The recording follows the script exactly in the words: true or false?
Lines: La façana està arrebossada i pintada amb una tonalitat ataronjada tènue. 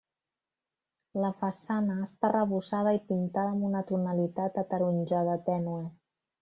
true